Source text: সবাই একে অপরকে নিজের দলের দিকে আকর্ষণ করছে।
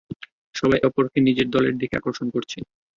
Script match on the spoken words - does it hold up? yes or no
no